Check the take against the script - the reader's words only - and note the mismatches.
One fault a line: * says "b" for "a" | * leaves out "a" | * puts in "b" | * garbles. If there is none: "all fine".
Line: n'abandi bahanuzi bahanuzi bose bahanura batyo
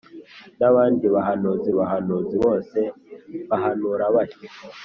all fine